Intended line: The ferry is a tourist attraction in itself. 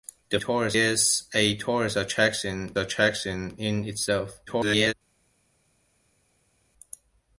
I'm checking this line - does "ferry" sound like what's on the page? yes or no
no